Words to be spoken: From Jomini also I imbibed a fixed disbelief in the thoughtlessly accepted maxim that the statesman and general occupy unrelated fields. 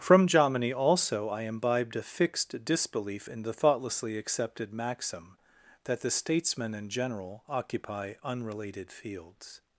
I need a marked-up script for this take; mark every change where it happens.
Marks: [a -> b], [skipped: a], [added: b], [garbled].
From Jomini also I imbibed a fixed disbelief in the thoughtlessly accepted maxim that the statesman and general occupy unrelated fields.